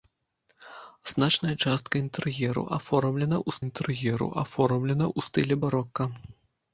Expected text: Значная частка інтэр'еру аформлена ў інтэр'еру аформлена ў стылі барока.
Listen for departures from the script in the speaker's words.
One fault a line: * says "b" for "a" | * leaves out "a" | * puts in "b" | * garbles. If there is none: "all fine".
all fine